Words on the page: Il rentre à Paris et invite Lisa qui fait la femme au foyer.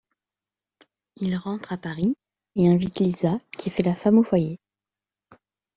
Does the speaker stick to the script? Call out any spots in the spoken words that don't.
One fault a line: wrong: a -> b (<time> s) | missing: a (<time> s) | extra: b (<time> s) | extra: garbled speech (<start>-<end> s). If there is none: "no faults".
no faults